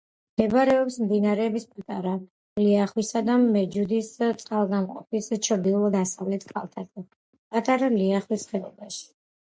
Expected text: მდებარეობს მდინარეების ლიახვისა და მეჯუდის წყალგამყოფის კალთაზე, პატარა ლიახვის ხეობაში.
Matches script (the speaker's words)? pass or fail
fail